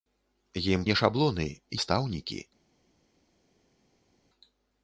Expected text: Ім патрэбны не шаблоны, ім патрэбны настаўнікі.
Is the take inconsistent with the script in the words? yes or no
yes